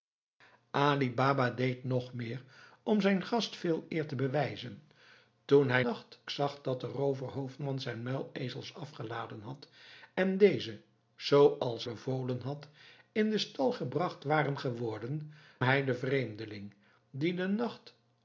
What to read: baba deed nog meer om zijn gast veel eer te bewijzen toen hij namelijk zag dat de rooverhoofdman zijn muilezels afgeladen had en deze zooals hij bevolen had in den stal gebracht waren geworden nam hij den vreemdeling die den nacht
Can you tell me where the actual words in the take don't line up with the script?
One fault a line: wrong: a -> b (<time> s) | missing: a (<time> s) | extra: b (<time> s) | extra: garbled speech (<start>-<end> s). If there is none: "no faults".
wrong: namelijk -> nacht (5.8 s)
missing: hij (11.9 s)
missing: nam (15.3 s)